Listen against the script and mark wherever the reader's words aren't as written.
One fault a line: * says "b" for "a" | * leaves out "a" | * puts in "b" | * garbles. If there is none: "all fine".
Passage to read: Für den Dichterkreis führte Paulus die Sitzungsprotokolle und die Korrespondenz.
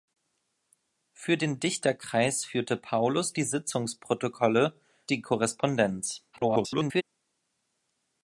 * leaves out "und"
* garbles